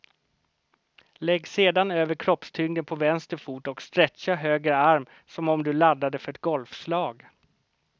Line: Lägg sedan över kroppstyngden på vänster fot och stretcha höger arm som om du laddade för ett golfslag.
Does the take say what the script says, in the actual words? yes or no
yes